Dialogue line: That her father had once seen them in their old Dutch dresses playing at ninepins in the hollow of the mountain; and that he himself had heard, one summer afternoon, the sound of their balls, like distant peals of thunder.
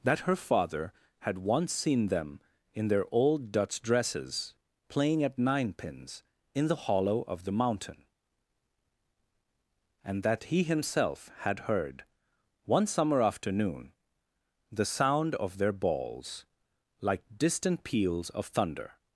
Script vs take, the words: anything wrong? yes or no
no